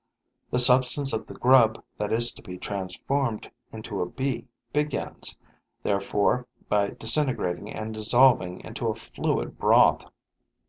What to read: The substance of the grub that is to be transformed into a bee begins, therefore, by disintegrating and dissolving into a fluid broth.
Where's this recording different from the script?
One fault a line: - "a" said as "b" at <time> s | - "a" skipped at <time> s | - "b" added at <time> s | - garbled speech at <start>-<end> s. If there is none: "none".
none